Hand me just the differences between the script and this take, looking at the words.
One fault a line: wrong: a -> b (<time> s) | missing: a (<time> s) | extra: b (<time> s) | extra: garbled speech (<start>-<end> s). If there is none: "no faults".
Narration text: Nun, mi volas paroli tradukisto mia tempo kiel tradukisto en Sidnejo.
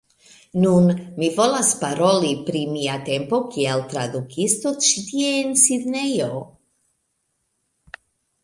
wrong: tradukisto -> pri (2.5 s)
extra: ĉi tie (4.9 s)